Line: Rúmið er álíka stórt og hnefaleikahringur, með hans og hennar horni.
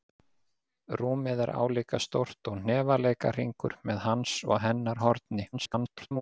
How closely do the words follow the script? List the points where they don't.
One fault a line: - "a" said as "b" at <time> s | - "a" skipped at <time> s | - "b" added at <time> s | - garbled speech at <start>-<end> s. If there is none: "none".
- garbled speech at 5.5-6.2 s